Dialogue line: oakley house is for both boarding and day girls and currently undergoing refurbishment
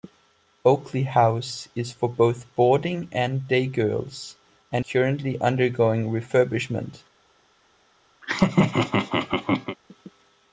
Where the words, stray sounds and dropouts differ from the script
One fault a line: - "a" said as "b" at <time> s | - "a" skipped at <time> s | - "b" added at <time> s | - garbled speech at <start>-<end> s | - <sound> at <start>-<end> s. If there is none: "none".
- laugh at 8.2-9.8 s